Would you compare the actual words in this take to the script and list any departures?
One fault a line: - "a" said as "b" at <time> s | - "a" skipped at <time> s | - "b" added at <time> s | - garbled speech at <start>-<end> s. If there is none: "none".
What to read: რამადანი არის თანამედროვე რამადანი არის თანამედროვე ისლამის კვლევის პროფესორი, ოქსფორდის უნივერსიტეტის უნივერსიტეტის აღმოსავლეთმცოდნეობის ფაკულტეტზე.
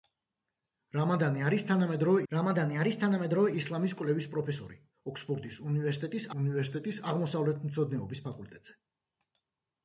none